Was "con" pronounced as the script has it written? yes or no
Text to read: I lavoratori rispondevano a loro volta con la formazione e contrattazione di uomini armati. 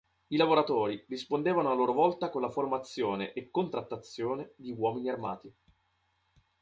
yes